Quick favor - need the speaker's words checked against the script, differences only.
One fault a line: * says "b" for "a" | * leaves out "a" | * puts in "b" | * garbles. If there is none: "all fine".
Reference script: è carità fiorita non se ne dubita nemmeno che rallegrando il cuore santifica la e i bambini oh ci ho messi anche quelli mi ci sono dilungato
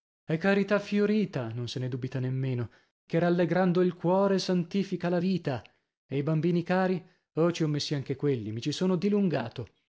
* puts in "vita"
* puts in "cari"